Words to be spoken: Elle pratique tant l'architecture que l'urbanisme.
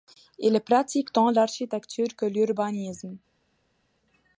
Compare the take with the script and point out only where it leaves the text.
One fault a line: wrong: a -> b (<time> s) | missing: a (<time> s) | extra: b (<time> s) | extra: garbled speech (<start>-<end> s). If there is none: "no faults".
wrong: Elle -> Il (0.4 s)